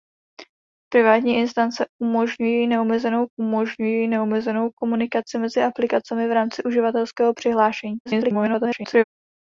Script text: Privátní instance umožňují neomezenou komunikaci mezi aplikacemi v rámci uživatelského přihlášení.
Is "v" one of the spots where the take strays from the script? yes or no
no